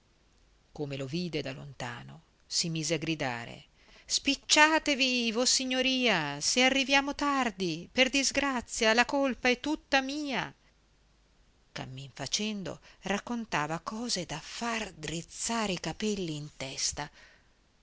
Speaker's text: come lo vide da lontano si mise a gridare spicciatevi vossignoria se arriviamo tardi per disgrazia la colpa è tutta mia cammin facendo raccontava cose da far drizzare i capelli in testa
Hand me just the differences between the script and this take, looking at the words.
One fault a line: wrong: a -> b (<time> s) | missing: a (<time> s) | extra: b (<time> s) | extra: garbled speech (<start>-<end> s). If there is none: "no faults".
no faults